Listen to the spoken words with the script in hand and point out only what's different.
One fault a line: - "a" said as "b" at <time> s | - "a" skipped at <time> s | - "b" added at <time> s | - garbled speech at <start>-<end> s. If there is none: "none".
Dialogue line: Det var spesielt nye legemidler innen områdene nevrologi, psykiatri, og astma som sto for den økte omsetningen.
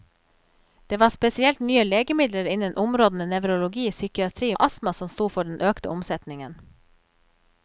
none